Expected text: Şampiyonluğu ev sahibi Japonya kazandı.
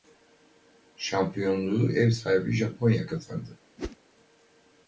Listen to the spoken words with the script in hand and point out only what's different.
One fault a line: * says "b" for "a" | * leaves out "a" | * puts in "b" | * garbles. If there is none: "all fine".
all fine